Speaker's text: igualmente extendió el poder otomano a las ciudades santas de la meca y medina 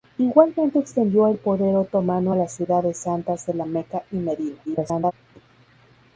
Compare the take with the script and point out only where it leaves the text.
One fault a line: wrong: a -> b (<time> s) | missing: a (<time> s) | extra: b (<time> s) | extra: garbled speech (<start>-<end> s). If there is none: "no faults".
extra: garbled speech (4.7-5.1 s)